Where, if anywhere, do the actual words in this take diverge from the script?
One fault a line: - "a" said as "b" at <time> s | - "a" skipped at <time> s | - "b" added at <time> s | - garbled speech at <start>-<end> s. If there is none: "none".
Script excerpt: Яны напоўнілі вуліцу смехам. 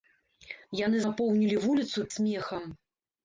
none